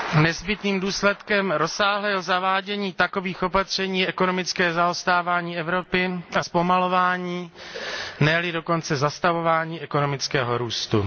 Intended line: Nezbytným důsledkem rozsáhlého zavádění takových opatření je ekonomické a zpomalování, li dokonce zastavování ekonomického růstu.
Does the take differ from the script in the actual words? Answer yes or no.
yes